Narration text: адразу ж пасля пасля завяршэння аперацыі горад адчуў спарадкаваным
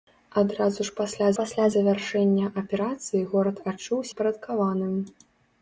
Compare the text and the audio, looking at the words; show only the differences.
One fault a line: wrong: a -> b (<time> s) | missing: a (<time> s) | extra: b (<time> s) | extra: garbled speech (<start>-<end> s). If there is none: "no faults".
no faults